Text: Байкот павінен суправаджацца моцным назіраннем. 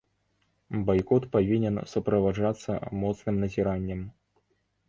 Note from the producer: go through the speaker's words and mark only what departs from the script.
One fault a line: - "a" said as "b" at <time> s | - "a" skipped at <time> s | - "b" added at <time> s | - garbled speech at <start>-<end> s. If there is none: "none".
none